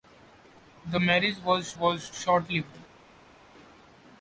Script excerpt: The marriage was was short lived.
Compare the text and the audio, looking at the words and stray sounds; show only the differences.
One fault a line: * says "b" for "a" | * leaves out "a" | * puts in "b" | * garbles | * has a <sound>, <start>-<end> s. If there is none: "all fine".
all fine